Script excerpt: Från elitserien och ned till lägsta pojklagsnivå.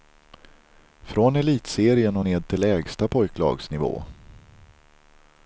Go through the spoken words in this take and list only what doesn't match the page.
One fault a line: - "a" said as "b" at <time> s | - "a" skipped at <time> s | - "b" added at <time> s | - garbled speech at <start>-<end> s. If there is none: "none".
none